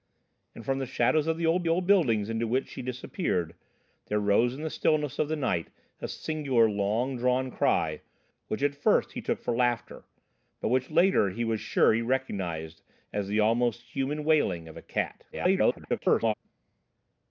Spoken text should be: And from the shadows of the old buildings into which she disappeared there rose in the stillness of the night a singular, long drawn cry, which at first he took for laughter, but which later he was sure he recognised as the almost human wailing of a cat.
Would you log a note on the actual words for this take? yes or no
yes